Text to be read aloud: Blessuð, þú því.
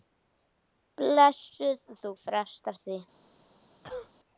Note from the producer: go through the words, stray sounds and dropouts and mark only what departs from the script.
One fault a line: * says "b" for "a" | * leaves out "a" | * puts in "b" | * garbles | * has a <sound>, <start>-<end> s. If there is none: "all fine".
* puts in "frestar"
* has a cough, 3.8-4.1 s